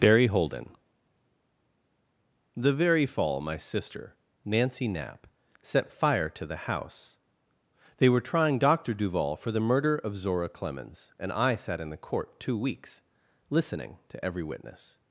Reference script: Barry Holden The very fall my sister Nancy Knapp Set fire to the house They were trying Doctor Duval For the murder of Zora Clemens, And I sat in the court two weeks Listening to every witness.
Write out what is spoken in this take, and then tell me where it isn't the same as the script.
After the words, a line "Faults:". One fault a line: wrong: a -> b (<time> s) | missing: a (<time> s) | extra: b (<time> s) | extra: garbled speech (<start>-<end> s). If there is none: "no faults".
Barry Holden The very fall my sister Nancy Knapp Set fire to the house They were trying Doctor Duval For the murder of Zora Clemens, And I sat in the court two weeks Listening to every witness.
Faults:
no faults